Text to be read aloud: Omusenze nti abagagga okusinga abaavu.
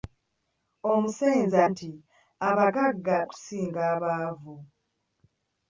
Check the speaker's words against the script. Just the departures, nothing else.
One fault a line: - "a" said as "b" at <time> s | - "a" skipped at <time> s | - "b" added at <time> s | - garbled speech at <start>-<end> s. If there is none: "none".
none